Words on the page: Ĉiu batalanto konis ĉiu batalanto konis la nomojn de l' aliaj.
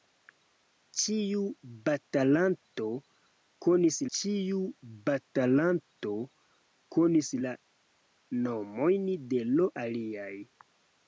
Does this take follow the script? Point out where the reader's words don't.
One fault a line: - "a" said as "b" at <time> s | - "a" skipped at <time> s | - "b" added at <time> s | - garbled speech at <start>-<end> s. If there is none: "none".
none